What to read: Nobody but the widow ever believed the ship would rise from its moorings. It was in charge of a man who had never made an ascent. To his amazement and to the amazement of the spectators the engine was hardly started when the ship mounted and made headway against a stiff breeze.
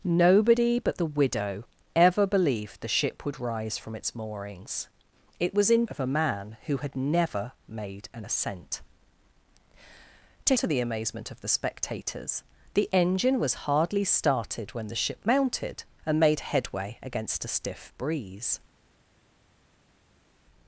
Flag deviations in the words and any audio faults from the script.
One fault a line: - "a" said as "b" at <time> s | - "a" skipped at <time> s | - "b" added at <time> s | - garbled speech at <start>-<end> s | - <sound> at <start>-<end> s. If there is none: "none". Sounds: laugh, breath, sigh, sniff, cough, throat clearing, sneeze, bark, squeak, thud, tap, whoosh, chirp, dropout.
- "charge" skipped at 5.8 s
- "his amazement and" skipped at 10.6 s